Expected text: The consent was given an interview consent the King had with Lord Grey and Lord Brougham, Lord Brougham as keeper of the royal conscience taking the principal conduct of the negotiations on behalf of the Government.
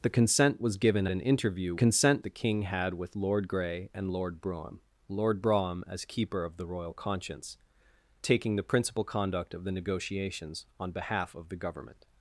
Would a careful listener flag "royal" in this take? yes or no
no